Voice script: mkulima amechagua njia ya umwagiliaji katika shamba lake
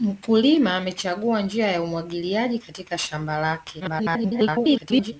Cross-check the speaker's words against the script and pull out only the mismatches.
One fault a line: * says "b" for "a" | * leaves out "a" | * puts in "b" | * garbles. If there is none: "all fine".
* garbles